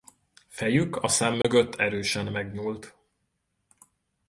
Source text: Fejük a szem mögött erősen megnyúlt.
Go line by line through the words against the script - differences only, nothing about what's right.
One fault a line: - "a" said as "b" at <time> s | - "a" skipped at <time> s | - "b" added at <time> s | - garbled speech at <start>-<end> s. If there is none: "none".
none